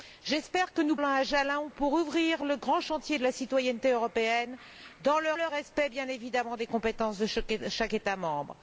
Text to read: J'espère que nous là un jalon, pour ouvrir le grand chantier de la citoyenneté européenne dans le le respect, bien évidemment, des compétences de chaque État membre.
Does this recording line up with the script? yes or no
yes